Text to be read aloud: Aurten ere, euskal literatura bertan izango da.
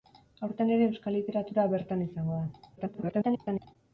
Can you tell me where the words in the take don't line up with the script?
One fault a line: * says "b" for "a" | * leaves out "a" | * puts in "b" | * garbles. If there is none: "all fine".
* garbles